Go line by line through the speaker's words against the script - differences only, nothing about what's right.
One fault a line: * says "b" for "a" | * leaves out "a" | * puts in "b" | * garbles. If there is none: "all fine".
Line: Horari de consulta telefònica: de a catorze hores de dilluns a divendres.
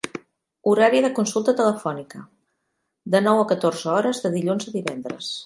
* puts in "nou"